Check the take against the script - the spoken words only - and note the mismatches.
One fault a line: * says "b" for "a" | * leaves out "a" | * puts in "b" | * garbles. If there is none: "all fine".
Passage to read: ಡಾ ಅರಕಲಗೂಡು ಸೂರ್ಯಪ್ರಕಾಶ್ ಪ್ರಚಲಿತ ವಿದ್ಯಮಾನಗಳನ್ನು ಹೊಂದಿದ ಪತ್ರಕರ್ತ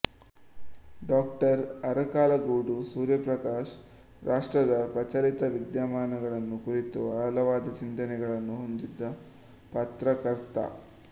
* puts in "ರಾಷ್ಟ್ರದ"
* puts in "ಕುರಿತು ಆಳವಾದ ಚಿಂತನೆಗಳನ್ನು"